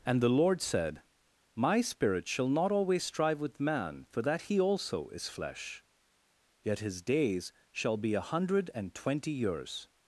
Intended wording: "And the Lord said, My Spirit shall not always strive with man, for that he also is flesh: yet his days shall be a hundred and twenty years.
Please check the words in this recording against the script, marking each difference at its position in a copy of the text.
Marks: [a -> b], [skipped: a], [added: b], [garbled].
"And the Lord said, My Spirit shall not always strive with man, for that he also is flesh: yet his days shall be a hundred and twenty years.